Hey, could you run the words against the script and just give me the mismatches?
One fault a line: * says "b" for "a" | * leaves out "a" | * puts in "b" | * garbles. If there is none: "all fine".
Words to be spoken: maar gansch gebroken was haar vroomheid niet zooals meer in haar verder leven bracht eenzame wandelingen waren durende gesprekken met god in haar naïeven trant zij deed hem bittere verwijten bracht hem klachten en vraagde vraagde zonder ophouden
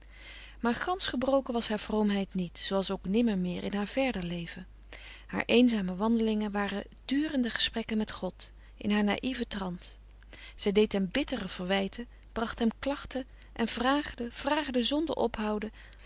* puts in "ook nimmer"
* says "haar" for "bracht"